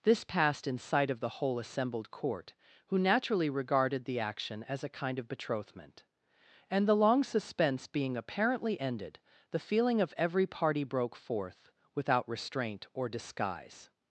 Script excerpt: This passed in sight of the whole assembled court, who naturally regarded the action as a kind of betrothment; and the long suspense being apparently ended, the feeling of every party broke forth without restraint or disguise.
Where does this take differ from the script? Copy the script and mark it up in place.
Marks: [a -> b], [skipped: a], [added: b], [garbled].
This passed in sight of the whole assembled court, who naturally regarded the action as a kind of betrothment; and the long suspense being apparently ended, the feeling of every party broke forth without restraint or disguise.